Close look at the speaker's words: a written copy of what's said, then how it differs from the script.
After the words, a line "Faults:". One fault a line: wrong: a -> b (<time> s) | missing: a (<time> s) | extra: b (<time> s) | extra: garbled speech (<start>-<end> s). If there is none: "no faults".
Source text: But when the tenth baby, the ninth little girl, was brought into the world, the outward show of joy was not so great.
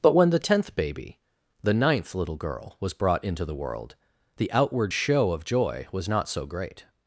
But when the tenth baby, the ninth little girl, was brought into the world, the outward show of joy was not so great.
Faults:
no faults